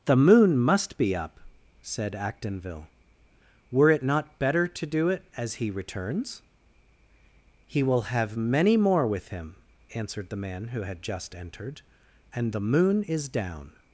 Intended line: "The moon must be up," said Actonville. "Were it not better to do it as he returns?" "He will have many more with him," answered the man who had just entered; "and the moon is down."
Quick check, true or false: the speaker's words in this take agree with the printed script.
true